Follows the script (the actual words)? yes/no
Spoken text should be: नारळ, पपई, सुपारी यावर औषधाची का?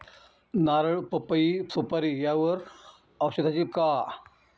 yes